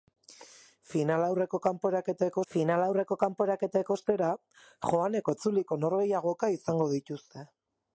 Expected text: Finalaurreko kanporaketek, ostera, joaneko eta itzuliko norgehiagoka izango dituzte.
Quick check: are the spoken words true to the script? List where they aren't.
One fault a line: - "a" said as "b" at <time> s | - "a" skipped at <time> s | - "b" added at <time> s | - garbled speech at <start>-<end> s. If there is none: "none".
- "finalaurreko kanporaketek" added at 2.5 s
- "eta" skipped at 5.3 s